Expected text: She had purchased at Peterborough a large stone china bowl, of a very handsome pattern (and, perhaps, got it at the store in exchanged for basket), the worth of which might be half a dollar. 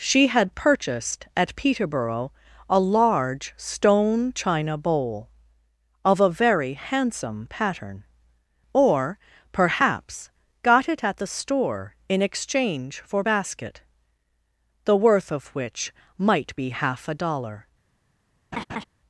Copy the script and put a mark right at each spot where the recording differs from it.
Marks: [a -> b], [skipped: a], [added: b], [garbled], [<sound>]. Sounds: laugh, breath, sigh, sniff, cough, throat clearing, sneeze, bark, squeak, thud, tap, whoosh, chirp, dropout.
She had purchased at Peterborough a large stone china bowl, of a very handsome pattern [(and, -> or] perhaps, got it at the store in [exchanged -> exchange] for basket), the worth of which might be half a dollar. [laugh]